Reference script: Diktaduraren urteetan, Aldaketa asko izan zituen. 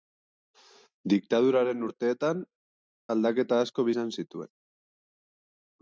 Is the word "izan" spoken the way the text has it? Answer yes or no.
yes